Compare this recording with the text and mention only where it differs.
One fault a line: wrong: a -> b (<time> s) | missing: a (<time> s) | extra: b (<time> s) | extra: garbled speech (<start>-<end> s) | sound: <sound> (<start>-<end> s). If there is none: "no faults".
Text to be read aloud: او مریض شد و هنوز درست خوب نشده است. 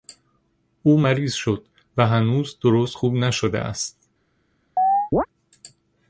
sound: chirp (4.8-5.3 s)